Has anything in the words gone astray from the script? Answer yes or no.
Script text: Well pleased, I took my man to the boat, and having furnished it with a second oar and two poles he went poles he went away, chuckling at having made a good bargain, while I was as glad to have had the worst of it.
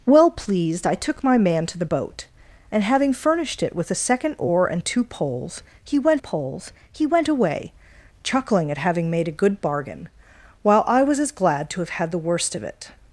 no